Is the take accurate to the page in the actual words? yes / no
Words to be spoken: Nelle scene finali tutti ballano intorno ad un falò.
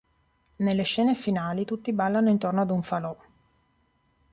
yes